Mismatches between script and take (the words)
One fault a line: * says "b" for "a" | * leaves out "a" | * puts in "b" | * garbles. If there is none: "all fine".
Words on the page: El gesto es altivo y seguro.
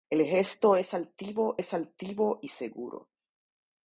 * puts in "es altivo"